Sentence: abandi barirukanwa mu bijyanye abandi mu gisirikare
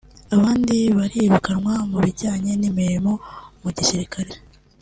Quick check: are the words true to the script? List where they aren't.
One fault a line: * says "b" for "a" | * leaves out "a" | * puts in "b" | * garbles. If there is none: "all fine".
* says "n'imirimo" for "abandi"